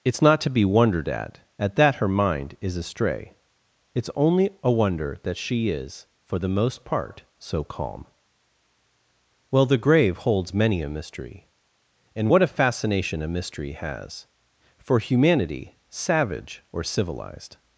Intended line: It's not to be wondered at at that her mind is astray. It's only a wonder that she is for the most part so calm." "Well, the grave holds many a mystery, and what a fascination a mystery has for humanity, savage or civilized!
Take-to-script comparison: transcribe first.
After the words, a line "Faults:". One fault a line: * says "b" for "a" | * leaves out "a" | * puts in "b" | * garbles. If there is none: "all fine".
It's not to be wondered at at that her mind is astray. It's only a wonder that she is for the most part so calm." "Well, the grave holds many a mystery, and what a fascination a mystery has for humanity, savage or civilized!
Faults:
all fine